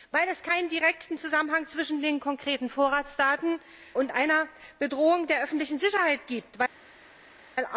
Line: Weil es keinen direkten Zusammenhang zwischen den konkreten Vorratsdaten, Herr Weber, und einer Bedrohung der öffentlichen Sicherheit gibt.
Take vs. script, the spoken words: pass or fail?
fail